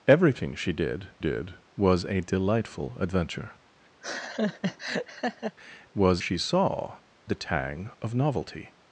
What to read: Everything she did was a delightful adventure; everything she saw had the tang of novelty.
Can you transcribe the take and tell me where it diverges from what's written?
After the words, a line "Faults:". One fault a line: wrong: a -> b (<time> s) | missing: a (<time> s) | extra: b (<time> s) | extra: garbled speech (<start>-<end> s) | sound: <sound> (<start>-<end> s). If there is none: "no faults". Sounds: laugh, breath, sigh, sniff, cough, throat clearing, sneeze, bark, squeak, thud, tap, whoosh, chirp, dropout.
Everything she did did was a delightful adventure; was she saw the tang of novelty.
Faults:
extra: did (1.2 s)
sound: laugh (4.0-5.6 s)
wrong: everything -> was (5.9 s)
missing: had (7.0 s)